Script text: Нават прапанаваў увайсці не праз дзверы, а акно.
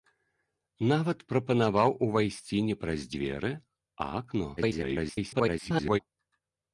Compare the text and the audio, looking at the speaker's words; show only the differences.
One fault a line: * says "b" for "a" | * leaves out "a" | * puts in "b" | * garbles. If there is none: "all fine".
* garbles